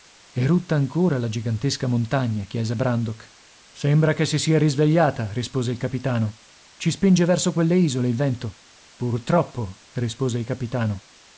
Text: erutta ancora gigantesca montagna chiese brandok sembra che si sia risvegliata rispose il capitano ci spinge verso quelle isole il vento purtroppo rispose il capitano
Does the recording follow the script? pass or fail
fail